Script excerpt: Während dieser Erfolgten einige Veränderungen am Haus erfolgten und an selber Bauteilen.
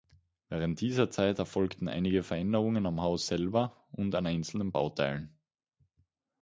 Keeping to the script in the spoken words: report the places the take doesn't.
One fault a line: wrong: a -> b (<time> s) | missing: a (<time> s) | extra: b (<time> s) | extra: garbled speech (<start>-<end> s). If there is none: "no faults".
extra: Zeit (1.1 s)
wrong: erfolgten -> selber (3.3 s)
wrong: selber -> einzelnen (4.2 s)